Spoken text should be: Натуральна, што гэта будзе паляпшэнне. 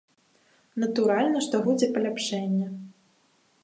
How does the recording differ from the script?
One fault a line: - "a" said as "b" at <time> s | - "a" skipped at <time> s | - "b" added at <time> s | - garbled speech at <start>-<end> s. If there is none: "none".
- "гэта" skipped at 1.6 s